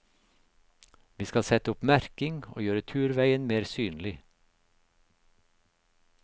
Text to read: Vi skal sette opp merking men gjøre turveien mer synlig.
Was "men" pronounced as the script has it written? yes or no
no